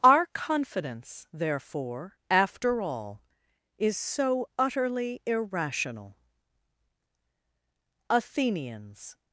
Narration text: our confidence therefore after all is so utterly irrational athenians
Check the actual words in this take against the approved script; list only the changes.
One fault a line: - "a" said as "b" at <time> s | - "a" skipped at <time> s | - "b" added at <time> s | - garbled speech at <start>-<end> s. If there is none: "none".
none